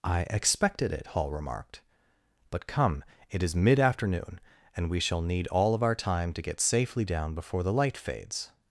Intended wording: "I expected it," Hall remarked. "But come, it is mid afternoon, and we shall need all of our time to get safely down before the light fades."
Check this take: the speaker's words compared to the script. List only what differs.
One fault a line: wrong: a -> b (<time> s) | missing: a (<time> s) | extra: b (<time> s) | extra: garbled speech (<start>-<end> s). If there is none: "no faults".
no faults